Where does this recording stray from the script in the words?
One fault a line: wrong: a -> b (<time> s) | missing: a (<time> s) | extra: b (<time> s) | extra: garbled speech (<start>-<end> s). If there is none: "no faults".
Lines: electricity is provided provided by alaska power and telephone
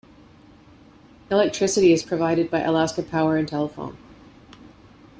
missing: provided (2.5 s)